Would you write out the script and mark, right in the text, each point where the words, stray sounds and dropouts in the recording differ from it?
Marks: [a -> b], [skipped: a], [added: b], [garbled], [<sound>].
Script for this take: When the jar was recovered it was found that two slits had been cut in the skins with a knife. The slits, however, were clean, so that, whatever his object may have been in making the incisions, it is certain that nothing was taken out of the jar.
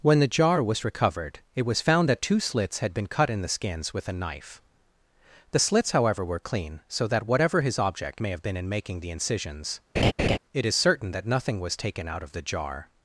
When the jar was recovered it was found that two slits had been cut in the skins with a knife. The slits, however, were clean, so that, whatever his object may have been in making the incisions, [laugh] it is certain that nothing was taken out of the jar.